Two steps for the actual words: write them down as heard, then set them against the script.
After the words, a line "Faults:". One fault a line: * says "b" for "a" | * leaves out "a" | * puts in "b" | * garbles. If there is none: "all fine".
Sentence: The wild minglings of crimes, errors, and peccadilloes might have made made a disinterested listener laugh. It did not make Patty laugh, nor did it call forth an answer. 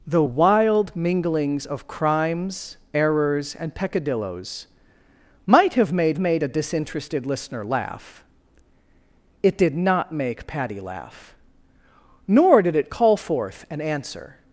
The wild minglings of crimes, errors, and peccadilloes might have made made a disinterested listener laugh. It did not make Patty laugh, nor did it call forth an answer.
Faults:
all fine